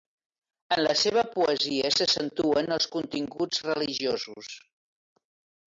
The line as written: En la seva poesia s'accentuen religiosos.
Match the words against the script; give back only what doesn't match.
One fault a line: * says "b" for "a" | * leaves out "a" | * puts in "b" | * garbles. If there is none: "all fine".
* puts in "els continguts"